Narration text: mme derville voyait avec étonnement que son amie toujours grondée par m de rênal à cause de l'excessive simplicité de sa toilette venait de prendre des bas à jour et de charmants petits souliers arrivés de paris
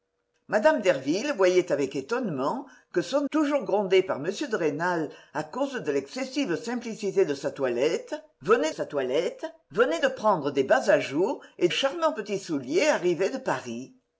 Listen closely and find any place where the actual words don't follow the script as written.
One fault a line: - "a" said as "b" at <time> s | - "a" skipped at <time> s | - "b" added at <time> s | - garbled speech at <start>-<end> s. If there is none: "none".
- "amie" skipped at 3.3 s
- "sa toilette venait" added at 8.7 s
- "de" skipped at 11.7 s